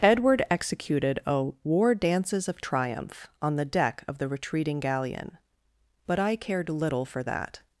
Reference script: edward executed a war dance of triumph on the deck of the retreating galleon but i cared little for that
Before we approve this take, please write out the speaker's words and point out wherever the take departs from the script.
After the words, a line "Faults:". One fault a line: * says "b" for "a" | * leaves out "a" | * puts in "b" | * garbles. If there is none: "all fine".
edward executed a war dances of triumph on the deck of the retreating galleon but i cared little for that
Faults:
* says "dances" for "dance"